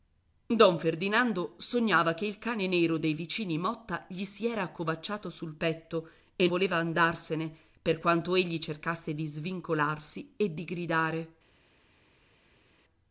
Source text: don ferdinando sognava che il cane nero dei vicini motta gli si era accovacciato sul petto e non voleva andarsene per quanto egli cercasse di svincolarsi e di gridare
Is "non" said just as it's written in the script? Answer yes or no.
no